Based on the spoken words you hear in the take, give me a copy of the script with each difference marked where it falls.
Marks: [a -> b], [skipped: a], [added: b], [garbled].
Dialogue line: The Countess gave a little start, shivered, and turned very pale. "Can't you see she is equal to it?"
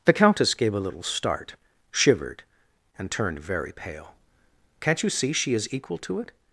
The Countess gave a little start, shivered, and turned very pale. "Can't you see she is equal to it?"